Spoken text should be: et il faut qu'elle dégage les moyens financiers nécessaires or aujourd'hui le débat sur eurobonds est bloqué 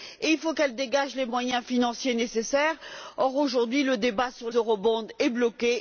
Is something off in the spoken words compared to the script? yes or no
no